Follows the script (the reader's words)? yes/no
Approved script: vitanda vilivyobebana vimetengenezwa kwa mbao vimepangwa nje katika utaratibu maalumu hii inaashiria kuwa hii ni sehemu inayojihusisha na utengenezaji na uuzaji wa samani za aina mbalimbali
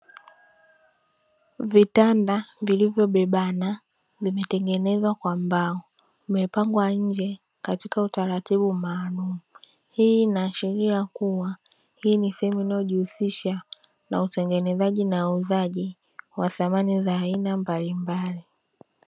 yes